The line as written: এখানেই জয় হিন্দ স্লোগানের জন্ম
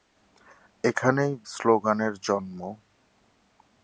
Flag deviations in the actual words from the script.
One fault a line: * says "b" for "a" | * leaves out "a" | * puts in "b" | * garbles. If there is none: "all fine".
* leaves out "জয় হিন্দ"